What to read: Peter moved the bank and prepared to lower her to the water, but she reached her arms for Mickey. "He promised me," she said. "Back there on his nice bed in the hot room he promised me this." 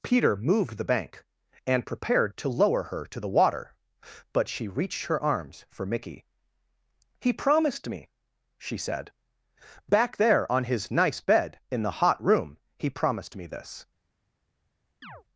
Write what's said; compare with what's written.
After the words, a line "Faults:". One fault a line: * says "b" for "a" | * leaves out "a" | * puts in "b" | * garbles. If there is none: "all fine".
Peter moved the bank and prepared to lower her to the water, but she reached her arms for Mickey. "He promised me," she said. "Back there on his nice bed in the hot room he promised me this."
Faults:
all fine